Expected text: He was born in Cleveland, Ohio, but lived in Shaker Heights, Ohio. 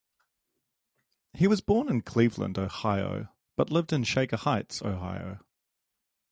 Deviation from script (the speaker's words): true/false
false